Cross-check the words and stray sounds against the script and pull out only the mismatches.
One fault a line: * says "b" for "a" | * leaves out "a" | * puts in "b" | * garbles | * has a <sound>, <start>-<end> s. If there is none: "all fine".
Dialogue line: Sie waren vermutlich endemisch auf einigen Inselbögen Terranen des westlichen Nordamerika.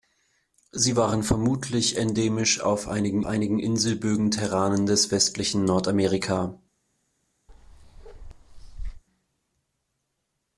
* puts in "einigen"
* has a bark, 7.5-9.0 s